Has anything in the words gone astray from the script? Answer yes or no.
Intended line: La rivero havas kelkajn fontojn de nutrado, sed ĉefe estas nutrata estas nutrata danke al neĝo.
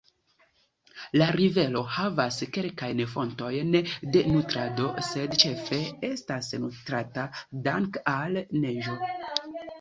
yes